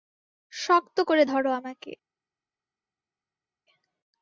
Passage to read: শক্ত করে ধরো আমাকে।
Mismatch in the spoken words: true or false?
false